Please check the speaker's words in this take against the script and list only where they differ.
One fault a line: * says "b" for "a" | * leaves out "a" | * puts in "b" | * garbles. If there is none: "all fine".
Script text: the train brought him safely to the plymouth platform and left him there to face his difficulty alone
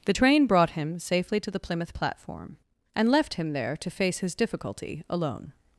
all fine